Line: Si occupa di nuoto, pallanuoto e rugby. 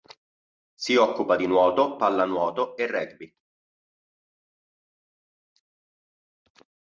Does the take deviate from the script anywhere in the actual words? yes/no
no